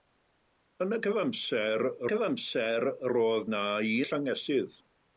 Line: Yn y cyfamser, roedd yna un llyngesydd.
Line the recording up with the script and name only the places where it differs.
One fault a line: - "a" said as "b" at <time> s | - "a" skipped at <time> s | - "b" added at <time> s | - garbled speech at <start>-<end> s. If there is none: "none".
- "cyfamser" added at 2.1 s
- "un" skipped at 3.6 s